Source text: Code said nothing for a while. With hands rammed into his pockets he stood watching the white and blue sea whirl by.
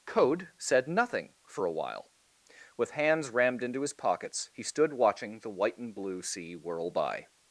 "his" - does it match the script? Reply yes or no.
yes